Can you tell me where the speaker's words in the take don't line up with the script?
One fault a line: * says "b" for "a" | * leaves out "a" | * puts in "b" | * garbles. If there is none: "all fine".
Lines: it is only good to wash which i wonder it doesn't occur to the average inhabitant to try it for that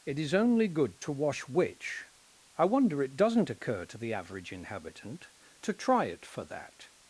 all fine